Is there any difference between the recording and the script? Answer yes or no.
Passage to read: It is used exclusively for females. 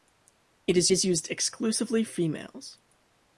yes